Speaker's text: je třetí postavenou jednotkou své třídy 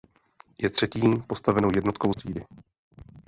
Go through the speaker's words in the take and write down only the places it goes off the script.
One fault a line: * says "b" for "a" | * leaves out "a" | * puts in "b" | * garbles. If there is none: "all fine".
* leaves out "své"